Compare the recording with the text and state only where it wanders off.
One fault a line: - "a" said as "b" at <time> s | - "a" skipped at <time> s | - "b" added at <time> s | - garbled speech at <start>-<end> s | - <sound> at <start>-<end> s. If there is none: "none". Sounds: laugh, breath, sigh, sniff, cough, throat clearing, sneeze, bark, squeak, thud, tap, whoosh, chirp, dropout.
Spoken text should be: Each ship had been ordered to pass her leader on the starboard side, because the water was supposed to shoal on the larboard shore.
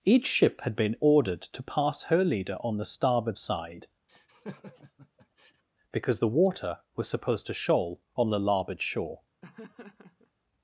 - laugh at 4.1-5.6 s
- laugh at 9.4-10.3 s